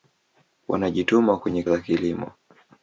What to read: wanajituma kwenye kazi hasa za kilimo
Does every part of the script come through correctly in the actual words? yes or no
no